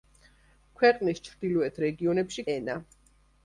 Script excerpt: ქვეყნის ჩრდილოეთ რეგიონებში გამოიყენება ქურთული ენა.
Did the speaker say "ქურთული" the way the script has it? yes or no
no